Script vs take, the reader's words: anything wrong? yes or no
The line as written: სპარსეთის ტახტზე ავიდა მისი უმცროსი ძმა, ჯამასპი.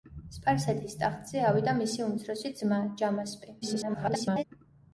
yes